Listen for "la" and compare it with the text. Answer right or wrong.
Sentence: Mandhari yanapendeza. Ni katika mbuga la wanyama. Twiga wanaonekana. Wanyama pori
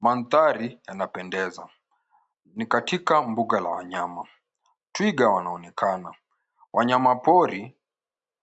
right